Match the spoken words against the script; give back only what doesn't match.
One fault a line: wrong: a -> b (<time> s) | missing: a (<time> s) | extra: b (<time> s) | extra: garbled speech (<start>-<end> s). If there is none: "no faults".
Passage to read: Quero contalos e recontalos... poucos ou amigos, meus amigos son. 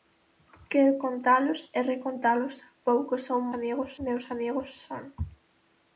no faults